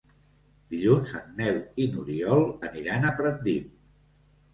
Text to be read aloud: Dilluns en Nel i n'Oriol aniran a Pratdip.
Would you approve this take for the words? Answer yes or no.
yes